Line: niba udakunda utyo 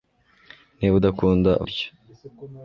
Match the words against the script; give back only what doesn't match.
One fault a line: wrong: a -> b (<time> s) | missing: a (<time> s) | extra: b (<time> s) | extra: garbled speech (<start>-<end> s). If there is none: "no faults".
no faults